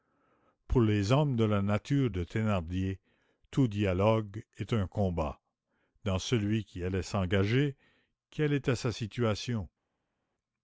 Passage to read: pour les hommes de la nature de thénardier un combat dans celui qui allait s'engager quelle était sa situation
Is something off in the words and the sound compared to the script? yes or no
yes